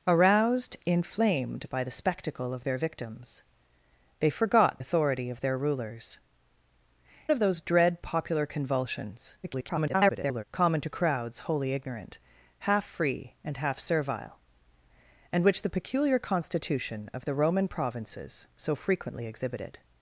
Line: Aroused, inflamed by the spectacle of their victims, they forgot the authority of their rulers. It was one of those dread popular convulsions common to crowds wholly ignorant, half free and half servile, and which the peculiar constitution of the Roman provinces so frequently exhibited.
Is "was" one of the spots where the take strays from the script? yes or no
yes